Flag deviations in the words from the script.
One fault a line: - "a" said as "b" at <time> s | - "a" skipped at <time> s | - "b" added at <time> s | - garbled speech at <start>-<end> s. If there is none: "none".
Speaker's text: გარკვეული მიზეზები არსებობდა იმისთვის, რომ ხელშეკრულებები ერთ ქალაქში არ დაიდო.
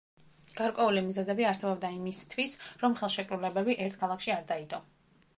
none